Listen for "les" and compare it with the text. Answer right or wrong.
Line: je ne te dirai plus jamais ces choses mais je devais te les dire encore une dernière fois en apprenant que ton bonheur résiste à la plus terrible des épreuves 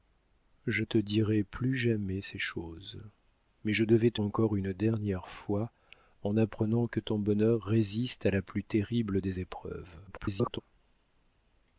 wrong